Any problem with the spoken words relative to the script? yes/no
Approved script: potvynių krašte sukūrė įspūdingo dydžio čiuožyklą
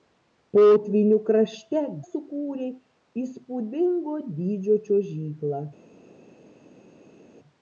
no